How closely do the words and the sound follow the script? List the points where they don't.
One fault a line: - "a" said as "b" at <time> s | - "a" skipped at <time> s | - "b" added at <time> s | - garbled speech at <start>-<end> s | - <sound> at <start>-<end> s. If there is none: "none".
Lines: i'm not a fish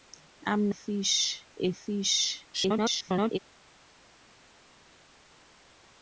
- "not" said as "fish" at 0.7 s
- garbled speech at 2.5-3.4 s